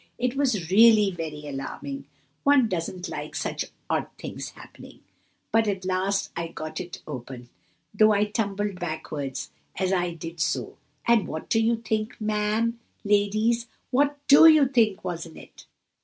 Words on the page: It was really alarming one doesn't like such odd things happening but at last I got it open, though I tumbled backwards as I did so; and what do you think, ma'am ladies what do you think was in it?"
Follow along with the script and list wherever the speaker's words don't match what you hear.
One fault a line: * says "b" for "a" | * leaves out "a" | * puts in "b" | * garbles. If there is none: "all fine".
* puts in "very"